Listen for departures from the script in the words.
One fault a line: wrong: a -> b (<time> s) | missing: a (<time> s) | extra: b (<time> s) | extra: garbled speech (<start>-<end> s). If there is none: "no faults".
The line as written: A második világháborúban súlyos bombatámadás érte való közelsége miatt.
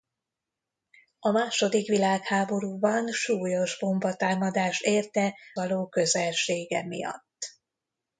no faults